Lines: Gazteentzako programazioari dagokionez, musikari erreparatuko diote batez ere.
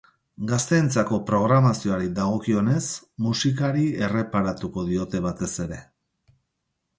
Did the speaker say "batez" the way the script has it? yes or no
yes